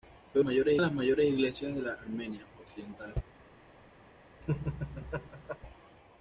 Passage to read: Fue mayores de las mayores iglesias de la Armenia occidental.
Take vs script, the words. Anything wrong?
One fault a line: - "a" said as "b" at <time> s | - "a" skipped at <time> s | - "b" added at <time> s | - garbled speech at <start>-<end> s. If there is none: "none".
none